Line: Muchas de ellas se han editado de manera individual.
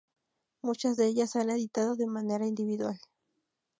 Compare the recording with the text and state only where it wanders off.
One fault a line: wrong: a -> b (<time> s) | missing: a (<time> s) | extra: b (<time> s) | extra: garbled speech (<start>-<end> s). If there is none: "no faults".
no faults